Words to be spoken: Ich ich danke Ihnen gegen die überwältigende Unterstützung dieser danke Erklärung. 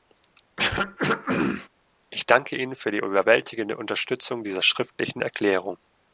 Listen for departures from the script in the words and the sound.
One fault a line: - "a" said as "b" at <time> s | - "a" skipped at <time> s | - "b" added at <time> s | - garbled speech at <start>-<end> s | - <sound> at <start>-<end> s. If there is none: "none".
- throat clearing at 0.6-1.7 s
- "ich" skipped at 2.2 s
- "gegen" said as "für" at 2.8 s
- "danke" said as "schriftlichen" at 4.6 s